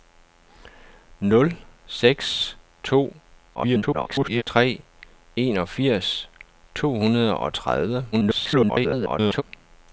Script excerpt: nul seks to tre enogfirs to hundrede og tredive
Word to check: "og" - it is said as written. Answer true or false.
true